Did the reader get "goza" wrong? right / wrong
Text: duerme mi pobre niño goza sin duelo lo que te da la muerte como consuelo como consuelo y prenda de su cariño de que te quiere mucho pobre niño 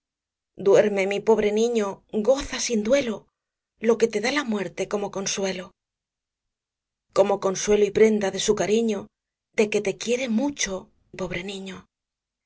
right